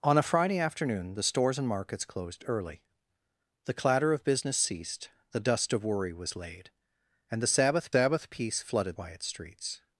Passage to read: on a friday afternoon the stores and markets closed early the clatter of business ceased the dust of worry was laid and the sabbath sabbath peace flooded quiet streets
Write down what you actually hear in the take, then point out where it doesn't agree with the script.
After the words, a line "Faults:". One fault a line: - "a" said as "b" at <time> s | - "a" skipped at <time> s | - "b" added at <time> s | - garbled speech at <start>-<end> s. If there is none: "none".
on a friday afternoon the stores and markets closed early the clatter of business ceased the dust of worry was laid and the sabbath sabbath peace flooded quiet streets
Faults:
none